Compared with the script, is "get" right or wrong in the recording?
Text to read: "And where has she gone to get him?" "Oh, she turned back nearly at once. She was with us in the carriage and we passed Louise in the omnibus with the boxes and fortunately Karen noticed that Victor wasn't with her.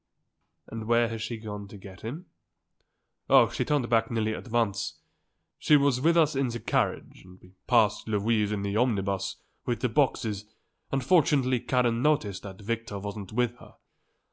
right